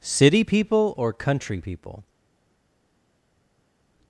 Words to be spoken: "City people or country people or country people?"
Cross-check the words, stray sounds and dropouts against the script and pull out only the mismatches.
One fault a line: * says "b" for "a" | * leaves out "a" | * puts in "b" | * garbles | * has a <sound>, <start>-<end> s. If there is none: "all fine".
* leaves out "or country people"